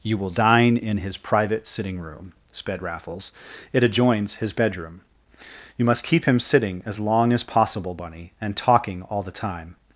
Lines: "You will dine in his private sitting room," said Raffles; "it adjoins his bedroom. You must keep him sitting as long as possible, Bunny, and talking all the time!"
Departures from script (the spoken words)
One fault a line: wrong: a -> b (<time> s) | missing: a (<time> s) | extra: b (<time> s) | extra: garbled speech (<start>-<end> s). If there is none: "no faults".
wrong: said -> sped (2.5 s)